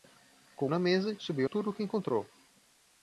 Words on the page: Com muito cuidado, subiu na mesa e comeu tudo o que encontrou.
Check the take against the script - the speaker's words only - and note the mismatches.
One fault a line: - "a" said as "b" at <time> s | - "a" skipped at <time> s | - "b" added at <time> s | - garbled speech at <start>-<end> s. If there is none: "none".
- "muito cuidado subiu" skipped at 0.7 s
- "comeu" said as "subiu" at 1.2 s